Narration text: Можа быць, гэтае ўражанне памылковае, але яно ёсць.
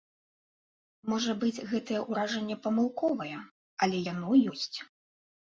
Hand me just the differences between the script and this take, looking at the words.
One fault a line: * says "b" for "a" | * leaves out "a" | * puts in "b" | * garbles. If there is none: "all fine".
all fine